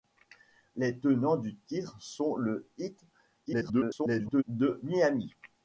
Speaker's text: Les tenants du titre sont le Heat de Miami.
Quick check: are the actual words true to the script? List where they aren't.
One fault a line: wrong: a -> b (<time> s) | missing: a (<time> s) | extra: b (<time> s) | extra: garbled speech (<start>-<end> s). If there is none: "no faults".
extra: garbled speech (3.5-4.4 s)